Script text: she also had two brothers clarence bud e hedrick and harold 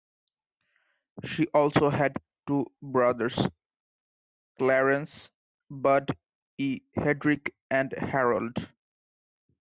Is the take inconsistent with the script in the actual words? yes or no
no